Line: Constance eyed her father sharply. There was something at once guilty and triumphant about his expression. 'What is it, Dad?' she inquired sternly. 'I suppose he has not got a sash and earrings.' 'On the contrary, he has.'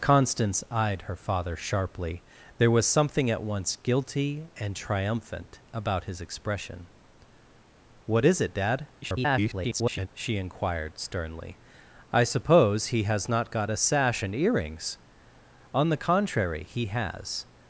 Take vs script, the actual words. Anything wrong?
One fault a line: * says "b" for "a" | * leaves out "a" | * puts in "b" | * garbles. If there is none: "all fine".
* garbles